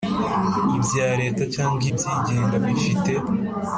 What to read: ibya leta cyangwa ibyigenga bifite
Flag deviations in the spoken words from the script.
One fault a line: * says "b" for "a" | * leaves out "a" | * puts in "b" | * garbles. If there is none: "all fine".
all fine